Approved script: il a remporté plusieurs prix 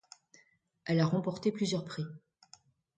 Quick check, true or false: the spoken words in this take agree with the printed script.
false